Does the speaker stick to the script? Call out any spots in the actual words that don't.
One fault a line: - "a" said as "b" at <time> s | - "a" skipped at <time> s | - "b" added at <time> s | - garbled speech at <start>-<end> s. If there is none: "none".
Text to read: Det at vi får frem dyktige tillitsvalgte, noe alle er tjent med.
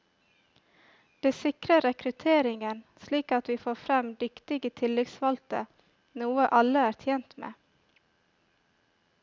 - "sikrer rekrutteringen slik" added at 1.4 s